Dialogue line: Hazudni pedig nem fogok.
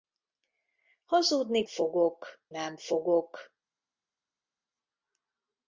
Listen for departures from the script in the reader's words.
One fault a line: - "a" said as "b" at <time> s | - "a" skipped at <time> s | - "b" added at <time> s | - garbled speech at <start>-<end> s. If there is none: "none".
- "pedig" said as "fogok" at 1.7 s